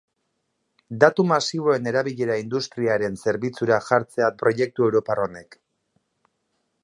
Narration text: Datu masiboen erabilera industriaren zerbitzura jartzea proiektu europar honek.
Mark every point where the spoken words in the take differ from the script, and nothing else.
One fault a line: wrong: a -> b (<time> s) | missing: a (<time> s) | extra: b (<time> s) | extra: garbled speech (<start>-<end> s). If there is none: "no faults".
no faults